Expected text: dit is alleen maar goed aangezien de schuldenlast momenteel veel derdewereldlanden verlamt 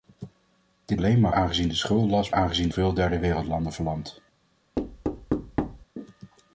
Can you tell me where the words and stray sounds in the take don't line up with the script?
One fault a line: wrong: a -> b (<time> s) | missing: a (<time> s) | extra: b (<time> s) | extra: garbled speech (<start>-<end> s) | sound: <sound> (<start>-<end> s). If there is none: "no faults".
missing: is (1.0 s)
missing: goed (1.3 s)
wrong: momenteel -> aangezien (2.3 s)
sound: thud (4.8-5.9 s)